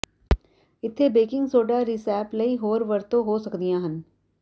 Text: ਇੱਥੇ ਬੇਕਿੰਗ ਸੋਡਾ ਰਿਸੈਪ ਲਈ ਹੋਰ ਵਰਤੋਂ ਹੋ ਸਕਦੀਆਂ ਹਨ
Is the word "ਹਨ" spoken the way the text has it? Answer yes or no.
yes